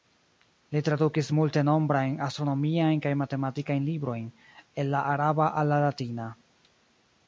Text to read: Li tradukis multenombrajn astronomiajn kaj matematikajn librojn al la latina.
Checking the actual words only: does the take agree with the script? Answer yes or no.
no